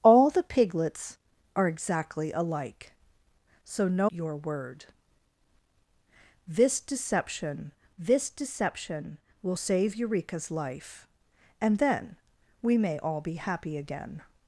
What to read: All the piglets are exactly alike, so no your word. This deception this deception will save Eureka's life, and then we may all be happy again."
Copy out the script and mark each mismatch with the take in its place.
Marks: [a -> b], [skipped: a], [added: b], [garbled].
All the piglets are exactly alike, so no your word. This deception this deception will save Eureka's life, and then we may all be happy again."